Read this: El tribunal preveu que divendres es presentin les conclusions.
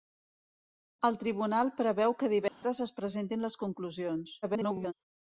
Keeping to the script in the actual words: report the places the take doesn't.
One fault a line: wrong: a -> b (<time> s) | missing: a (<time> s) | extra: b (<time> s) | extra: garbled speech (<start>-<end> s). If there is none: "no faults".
extra: garbled speech (4.4-4.9 s)